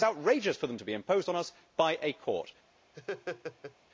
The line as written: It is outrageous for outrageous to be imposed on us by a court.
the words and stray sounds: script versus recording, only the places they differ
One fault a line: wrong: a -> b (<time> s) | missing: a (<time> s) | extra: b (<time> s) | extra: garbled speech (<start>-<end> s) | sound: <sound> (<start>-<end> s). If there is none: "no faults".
wrong: outrageous -> them (0.7 s)
sound: laugh (2.9-3.8 s)